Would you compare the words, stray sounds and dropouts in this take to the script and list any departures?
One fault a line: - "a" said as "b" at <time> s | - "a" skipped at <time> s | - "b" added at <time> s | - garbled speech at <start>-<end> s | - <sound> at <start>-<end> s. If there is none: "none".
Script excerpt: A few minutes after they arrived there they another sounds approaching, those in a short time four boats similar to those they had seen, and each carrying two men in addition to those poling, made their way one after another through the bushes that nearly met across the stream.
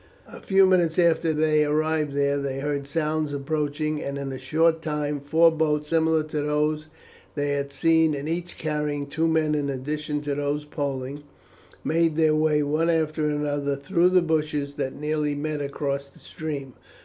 - "another" said as "heard" at 2.6 s
- "those" said as "and" at 4.0 s